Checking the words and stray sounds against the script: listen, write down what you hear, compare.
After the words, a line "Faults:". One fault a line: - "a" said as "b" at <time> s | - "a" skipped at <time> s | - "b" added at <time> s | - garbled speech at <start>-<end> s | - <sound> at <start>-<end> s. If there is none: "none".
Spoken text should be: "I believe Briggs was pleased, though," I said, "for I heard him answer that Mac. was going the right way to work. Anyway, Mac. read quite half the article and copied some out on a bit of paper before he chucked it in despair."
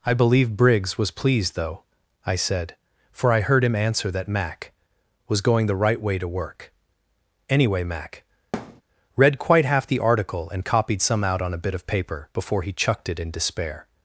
"I believe Briggs was pleased, though," I said, "for I heard him answer that Mac. was going the right way to work. Anyway, Mac. read quite half the article and copied some out on a bit of paper before he chucked it in despair."
Faults:
- thud at 8.5-8.8 s